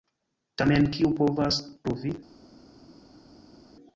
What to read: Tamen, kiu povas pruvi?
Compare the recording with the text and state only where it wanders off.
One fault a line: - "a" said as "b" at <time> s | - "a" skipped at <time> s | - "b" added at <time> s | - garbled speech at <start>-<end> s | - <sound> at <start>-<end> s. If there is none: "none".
none